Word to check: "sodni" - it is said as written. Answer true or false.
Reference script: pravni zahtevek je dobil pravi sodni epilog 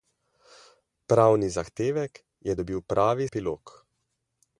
false